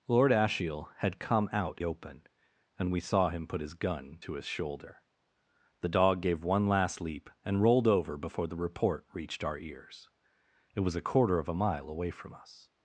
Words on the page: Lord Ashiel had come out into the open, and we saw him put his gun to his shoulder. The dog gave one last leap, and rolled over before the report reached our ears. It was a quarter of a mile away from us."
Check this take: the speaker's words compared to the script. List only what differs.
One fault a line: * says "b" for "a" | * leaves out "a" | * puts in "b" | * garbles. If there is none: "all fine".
* leaves out "into the"